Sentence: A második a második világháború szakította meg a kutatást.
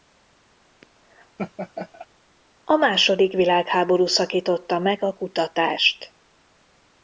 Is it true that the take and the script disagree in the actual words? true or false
true